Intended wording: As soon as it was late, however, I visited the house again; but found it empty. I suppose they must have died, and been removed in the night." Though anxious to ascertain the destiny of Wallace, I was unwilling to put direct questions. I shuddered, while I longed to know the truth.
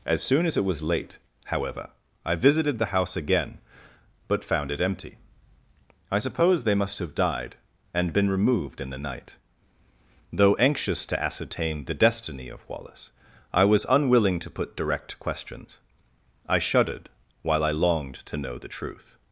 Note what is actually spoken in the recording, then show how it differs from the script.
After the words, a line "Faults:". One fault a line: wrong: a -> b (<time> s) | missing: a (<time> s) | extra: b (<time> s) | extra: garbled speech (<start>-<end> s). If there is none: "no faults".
As soon as it was late, however, I visited the house again; but found it empty. I suppose they must have died, and been removed in the night." Though anxious to ascertain the destiny of Wallace, I was unwilling to put direct questions. I shuddered, while I longed to know the truth.
Faults:
no faults